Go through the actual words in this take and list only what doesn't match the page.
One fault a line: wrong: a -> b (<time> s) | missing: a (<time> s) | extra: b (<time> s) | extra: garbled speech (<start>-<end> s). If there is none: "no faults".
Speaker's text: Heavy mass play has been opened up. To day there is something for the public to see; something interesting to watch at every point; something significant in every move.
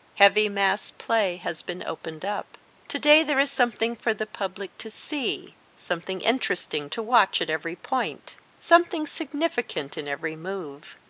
no faults